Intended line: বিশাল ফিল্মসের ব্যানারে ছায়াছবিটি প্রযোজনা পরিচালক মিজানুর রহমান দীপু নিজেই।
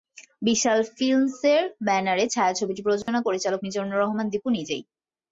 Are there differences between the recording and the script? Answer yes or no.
no